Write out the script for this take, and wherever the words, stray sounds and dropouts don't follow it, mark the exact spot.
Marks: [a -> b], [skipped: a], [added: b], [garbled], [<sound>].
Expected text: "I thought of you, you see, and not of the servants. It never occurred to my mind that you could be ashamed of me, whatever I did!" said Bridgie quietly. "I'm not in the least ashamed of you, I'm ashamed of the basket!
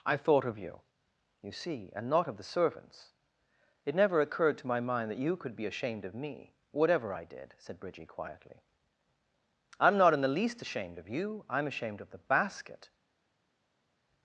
"I thought of you, you see, and not of the servants. It never occurred to my mind that you could be ashamed of me, whatever I did!" said Bridgie quietly. "I'm not in the least ashamed of you, I'm ashamed of the basket!